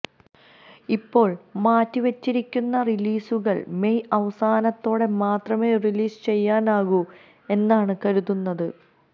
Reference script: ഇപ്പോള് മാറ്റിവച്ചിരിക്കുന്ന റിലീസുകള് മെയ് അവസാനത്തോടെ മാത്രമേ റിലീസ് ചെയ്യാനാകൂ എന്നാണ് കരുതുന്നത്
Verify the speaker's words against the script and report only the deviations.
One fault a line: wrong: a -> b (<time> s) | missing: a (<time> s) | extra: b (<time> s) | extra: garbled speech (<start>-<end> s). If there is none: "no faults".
no faults